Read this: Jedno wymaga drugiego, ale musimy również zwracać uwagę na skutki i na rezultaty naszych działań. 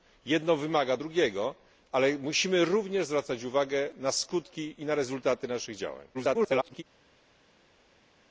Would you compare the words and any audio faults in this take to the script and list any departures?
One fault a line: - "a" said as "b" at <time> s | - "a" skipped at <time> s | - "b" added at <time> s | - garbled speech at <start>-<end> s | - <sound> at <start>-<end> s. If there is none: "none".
- garbled speech at 6.1-6.8 s